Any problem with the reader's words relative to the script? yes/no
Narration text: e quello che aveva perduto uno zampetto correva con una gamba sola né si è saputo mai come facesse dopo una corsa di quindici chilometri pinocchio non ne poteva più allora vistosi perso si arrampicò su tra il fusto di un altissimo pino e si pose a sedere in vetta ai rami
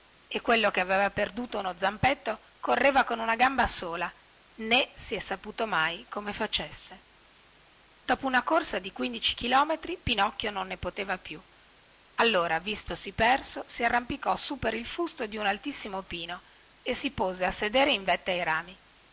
yes